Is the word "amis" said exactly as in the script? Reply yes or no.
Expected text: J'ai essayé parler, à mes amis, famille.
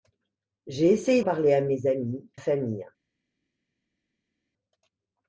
yes